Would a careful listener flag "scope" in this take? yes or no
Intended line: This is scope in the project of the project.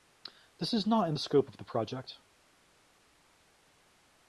yes